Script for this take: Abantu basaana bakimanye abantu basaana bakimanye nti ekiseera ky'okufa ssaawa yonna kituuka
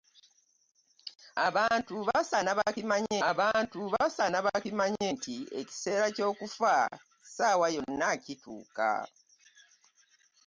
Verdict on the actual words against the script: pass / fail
pass